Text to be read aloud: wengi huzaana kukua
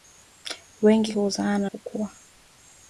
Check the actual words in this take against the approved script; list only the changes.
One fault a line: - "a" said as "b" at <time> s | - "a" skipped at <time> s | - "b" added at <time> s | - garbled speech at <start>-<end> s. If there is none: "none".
none